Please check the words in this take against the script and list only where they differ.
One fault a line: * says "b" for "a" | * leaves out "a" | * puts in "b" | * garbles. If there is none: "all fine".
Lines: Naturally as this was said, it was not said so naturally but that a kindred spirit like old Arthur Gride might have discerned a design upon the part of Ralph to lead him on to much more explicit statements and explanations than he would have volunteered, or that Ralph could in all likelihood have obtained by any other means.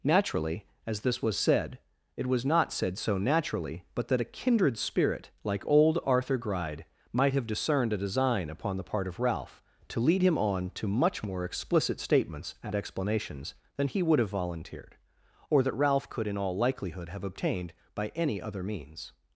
all fine